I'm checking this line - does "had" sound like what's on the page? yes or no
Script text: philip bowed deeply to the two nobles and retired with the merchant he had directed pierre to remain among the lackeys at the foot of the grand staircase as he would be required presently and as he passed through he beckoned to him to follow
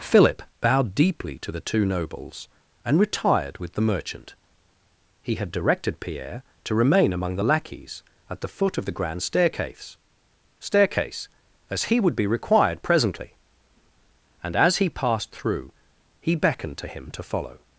yes